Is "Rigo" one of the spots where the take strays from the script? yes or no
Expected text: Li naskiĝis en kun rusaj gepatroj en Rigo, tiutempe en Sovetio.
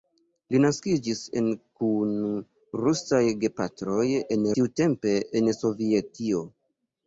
yes